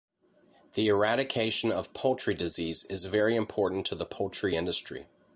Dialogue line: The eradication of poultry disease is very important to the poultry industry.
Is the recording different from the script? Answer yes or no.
no